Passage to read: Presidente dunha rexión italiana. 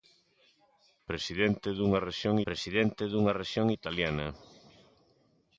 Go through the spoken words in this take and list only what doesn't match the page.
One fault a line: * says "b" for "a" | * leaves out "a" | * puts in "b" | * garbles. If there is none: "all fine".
* puts in "presidente dunha rexión"